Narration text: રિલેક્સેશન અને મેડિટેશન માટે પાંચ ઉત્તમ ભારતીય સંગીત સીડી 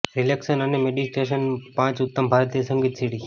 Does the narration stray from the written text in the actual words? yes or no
yes